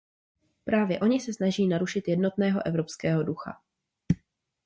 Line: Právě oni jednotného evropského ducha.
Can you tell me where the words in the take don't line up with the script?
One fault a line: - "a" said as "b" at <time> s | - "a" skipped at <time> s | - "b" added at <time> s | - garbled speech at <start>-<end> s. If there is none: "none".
- "se snaží narušit" added at 1.2 s